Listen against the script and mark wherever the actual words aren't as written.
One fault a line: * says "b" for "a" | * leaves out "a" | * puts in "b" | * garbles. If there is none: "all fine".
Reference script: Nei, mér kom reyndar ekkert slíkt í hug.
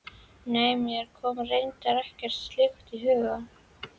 all fine